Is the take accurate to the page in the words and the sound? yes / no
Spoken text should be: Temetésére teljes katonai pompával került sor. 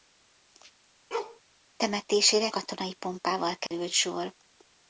no